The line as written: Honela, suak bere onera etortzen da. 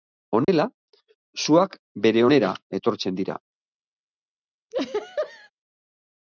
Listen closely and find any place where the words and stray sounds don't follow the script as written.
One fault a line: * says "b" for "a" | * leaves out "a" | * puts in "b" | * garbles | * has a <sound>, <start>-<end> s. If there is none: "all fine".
* has a dropout, 0.4-0.5 s
* says "dira" for "da"
* has a laugh, 4.7-5.5 s